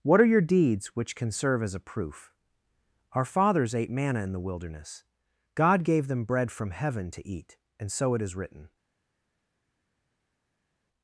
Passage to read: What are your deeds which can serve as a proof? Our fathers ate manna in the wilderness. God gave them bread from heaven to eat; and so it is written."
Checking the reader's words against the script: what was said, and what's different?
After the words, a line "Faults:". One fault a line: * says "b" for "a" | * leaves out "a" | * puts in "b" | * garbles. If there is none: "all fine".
What are your deeds which can serve as a proof? Our fathers ate manna in the wilderness. God gave them bread from heaven to eat; and so it is written."
Faults:
all fine